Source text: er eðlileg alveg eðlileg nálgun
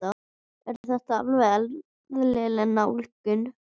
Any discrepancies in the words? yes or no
yes